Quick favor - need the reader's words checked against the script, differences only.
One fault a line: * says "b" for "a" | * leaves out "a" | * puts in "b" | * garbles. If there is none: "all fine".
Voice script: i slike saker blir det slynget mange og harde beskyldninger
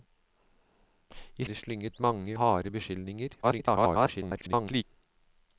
* leaves out "slike saker blir"
* leaves out "og"
* garbles